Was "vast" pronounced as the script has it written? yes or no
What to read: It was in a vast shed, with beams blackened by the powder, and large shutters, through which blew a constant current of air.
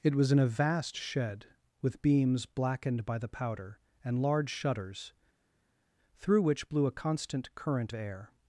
yes